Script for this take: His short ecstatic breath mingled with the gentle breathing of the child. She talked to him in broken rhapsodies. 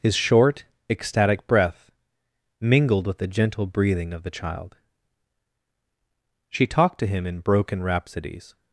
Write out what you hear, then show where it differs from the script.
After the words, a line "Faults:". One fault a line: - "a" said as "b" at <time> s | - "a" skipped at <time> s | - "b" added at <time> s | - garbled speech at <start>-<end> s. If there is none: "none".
His short ecstatic breath mingled with the gentle breathing of the child. She talked to him in broken rhapsodies.
Faults:
none